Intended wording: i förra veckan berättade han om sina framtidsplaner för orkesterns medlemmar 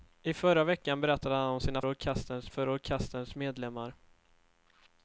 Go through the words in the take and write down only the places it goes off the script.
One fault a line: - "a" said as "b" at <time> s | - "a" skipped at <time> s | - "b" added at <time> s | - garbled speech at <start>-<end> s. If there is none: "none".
- "framtidsplaner" said as "orkesterns" at 1.8 s